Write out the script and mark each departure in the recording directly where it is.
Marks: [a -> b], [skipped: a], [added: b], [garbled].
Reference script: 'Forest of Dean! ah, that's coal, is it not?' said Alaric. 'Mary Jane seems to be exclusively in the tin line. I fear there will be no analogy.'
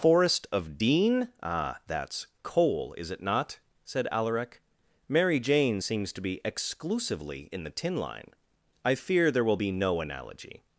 'Forest of Dean! ah, that's coal, is it not?' said Alaric. 'Mary Jane seems to be exclusively in the tin line. I fear there will be no analogy.'